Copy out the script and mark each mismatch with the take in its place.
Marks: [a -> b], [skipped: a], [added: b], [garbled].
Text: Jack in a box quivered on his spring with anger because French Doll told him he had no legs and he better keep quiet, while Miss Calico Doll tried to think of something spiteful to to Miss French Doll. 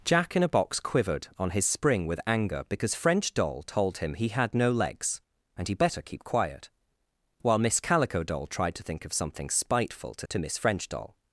Jack in a box quivered on his spring with anger because French Doll told him he had no legs and he better keep quiet, while Miss Calico Doll tried to think of something spiteful to to Miss French Doll.